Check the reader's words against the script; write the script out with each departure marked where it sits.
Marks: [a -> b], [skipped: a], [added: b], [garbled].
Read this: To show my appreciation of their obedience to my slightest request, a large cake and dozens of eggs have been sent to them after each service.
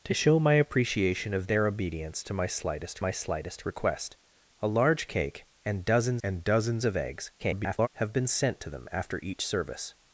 To show my appreciation of their obedience to my slightest [added: my slightest] request, a large cake and dozens [added: and dozens] of eggs [garbled] have been sent to them after each service.